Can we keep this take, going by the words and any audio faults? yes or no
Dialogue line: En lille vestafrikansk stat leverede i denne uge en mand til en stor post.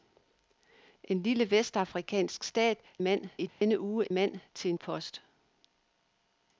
no